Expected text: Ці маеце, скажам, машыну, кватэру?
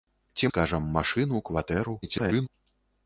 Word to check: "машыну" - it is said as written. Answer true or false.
true